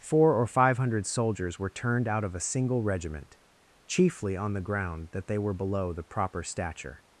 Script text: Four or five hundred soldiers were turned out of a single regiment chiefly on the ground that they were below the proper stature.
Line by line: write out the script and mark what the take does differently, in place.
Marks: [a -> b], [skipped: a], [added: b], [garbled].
Four or five hundred soldiers were turned out of a single regiment chiefly on the ground that they were below the proper stature.